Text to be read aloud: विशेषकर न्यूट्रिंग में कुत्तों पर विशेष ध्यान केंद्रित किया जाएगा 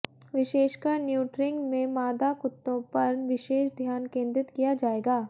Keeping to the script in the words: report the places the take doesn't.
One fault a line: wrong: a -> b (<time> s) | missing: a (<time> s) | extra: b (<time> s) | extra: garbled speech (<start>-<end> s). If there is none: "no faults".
extra: मादा (1.9 s)